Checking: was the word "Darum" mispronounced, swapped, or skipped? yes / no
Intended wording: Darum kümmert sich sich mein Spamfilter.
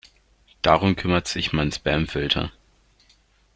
no